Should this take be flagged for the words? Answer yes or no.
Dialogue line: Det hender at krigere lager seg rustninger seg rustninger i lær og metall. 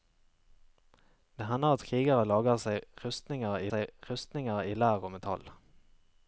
no